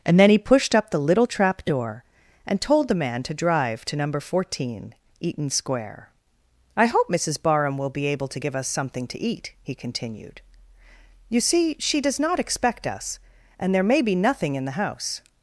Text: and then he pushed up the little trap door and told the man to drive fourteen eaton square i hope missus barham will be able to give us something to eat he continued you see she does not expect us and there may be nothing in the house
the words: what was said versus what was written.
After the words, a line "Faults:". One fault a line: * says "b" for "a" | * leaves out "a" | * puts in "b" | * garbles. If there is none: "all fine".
and then he pushed up the little trap door and told the man to drive to number fourteen eaton square i hope missus barham will be able to give us something to eat he continued you see she does not expect us and there may be nothing in the house
Faults:
* puts in "to number"